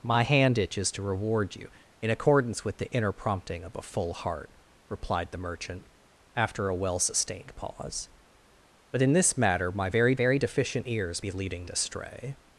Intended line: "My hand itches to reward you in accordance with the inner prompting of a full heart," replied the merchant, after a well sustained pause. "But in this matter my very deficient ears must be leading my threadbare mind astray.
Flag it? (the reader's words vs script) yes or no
yes